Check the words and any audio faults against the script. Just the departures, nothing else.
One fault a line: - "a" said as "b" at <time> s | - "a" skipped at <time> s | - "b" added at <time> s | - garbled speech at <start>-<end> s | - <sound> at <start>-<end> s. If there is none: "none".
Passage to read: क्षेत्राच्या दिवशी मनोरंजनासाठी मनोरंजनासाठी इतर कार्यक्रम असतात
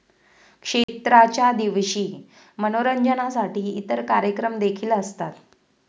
- dropout at 0.8-0.9 s
- "मनोरंजनासाठी" skipped at 3.7 s
- "देखील" added at 4.6 s